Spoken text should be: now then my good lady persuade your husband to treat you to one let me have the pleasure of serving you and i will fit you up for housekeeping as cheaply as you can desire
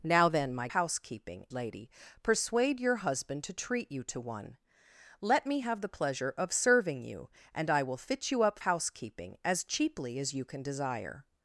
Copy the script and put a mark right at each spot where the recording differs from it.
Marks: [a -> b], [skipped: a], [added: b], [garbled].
now then my [good -> housekeeping] lady persuade your husband to treat you to one let me have the pleasure of serving you and i will fit you up [skipped: for] housekeeping as cheaply as you can desire